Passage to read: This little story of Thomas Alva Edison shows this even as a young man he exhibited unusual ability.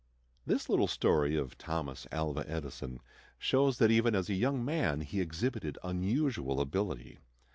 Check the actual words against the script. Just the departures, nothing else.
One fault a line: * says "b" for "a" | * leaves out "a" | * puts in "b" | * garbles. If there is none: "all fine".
* says "that" for "this"